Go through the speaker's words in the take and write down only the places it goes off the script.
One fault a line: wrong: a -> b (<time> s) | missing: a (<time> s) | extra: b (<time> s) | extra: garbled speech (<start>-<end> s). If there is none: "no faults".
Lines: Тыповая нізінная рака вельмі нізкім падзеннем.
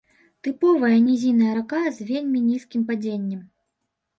extra: з (2.0 s)